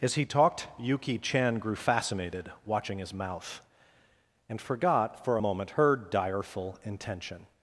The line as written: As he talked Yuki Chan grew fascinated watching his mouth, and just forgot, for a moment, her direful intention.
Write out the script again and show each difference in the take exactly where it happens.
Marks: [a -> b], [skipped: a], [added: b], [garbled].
As he talked Yuki Chan grew fascinated watching his mouth, and [skipped: just] forgot, for a moment, her direful intention.